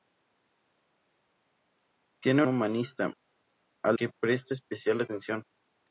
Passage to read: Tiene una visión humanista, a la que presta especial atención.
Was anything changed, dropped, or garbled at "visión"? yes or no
yes